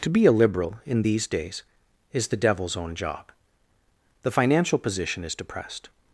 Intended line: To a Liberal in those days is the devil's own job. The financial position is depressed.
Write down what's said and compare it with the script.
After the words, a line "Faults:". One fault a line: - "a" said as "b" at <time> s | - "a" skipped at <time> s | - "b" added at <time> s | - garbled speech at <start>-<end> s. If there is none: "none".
To be a Liberal in these days is the devil's own job. The financial position is depressed.
Faults:
- "be" added at 0.1 s
- "those" said as "these" at 1.0 s